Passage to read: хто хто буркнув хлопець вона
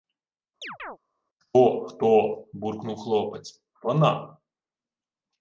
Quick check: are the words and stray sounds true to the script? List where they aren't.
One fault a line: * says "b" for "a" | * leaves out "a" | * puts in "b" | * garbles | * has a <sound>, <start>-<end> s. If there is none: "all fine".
* has a chirp, 0.6-1.0 s